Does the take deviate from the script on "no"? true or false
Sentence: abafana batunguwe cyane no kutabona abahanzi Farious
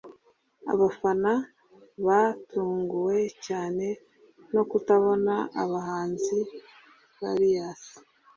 false